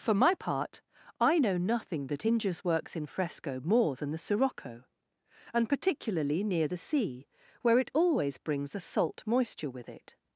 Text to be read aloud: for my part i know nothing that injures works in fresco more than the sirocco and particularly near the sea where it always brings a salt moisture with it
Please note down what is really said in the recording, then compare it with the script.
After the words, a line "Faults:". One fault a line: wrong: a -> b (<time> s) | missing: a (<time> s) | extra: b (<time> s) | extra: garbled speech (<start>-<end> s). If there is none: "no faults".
for my part i know nothing that injures works in fresco more than the sirocco and particularly near the sea where it always brings a salt moisture with it
Faults:
no faults